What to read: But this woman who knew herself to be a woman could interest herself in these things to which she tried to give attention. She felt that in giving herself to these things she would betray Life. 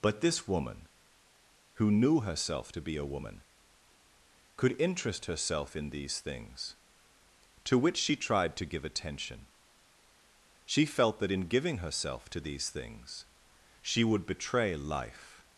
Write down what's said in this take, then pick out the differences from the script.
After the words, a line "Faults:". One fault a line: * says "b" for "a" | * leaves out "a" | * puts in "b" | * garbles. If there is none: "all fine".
But this woman who knew herself to be a woman could interest herself in these things to which she tried to give attention. She felt that in giving herself to these things she would betray Life.
Faults:
all fine